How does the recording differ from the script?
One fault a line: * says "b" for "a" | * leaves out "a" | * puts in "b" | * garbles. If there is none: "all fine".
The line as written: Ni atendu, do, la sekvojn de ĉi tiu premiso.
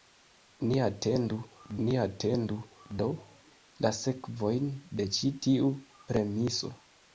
* puts in "ni atendu"